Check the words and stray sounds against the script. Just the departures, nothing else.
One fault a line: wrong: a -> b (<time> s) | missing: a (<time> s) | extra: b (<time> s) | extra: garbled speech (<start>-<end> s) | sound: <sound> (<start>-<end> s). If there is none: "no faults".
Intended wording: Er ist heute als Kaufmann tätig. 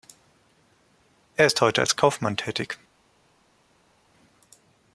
no faults